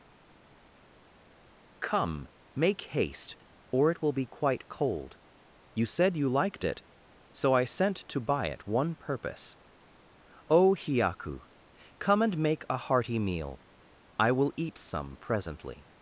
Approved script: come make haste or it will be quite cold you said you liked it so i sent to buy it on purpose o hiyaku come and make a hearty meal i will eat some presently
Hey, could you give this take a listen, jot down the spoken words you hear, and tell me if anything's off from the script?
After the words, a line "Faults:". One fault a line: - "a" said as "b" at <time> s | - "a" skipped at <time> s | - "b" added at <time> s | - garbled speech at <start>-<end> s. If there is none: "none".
come make haste or it will be quite cold you said you liked it so i sent to buy it one purpose o hiyaku come and make a hearty meal i will eat some presently
Faults:
- "on" said as "one" at 8.7 s